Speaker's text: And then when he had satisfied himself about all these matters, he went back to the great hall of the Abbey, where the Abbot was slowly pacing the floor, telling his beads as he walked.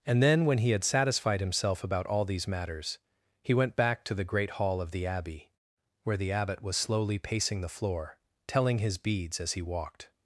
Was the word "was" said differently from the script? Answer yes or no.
no